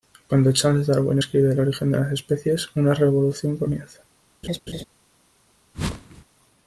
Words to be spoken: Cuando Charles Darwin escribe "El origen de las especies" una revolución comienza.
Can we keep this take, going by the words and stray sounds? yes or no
no